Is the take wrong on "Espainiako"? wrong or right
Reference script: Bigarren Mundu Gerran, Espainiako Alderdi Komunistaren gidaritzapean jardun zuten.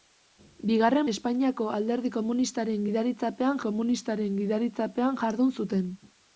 wrong